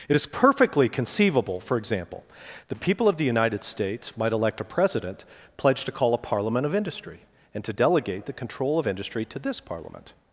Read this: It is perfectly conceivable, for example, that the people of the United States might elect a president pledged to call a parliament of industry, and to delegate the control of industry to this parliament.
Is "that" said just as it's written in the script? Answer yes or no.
no